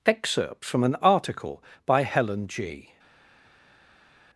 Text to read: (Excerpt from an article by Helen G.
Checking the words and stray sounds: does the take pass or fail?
pass